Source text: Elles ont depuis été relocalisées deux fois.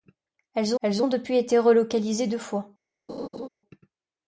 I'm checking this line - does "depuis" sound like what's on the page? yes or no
yes